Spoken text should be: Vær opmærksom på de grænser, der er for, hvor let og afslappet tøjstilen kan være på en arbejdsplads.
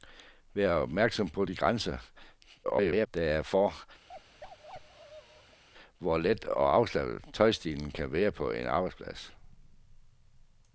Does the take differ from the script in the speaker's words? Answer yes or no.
yes